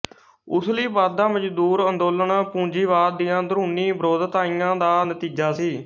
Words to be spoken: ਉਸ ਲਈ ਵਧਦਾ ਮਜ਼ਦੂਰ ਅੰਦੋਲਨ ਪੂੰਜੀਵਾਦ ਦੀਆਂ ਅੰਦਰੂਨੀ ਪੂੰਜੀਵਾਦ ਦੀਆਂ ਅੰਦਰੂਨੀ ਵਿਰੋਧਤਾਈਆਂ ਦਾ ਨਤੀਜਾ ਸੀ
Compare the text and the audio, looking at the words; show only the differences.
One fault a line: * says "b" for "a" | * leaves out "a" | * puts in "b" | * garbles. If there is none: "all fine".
* leaves out "ਪੂੰਜੀਵਾਦ ਦੀਆਂ ਅੰਦਰੂਨੀ"